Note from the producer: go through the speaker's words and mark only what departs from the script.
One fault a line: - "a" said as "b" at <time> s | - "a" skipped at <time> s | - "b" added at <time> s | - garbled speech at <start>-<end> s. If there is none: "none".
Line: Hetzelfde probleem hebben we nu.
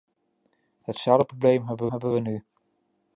- "hebben" added at 1.9 s